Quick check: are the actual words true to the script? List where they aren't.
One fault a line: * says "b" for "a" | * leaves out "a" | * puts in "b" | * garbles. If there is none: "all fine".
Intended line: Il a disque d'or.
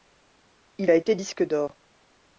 * puts in "été"